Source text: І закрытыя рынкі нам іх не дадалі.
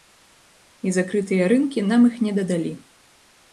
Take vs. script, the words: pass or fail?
pass